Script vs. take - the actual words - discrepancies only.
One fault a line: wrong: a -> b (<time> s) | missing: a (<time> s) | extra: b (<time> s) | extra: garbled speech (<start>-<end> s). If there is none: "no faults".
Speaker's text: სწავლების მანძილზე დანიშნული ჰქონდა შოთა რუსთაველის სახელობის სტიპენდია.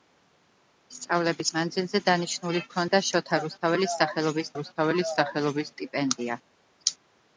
extra: რუსთაველის სახელობის (4.6 s)